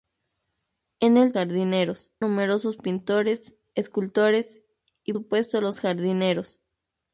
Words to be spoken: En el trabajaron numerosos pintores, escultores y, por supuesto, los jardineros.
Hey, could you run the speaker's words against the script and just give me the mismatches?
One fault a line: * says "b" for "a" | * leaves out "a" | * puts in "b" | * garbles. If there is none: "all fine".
* says "jardineros" for "trabajaron"
* leaves out "por"